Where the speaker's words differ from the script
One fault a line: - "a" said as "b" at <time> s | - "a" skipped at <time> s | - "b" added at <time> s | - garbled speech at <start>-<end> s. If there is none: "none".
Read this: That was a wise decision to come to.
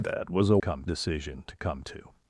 - "wise" said as "come" at 0.6 s